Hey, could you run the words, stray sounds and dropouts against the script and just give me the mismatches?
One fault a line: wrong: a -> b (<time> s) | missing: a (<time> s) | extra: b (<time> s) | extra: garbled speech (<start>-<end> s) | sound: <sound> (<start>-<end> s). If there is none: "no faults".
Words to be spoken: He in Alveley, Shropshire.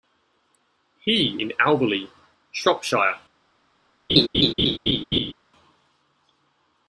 sound: laugh (4.1-5.3 s)